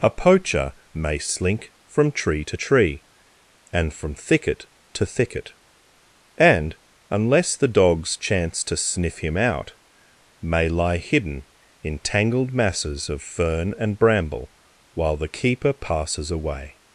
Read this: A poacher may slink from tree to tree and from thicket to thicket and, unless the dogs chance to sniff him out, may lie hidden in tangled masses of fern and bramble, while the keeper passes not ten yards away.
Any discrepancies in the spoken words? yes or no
yes